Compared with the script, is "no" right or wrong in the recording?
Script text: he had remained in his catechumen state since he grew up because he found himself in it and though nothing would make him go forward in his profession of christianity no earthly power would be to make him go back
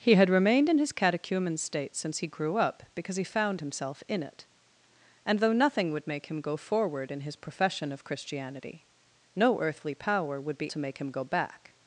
right